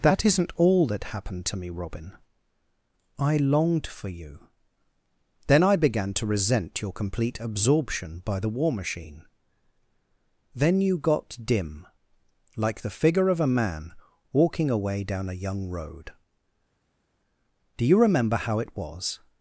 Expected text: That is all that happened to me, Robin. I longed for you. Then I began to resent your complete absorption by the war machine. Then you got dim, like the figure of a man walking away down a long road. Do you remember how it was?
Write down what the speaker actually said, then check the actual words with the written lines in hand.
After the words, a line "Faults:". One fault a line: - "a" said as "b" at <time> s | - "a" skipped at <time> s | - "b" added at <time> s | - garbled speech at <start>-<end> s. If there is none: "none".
That isn't all that happened to me, Robin. I longed for you. Then I began to resent your complete absorption by the war machine. Then you got dim, like the figure of a man walking away down a young road. Do you remember how it was?
Faults:
- "is" said as "isn't" at 0.2 s
- "long" said as "young" at 15.3 s